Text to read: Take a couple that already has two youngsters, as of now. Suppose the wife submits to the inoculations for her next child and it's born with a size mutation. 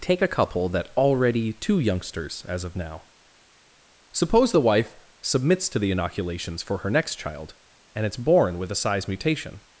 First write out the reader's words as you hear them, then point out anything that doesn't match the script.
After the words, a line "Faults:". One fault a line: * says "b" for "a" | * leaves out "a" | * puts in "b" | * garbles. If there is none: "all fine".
Take a couple that already two youngsters, as of now. Suppose the wife submits to the inoculations for her next child and it's born with a size mutation.
Faults:
* leaves out "has"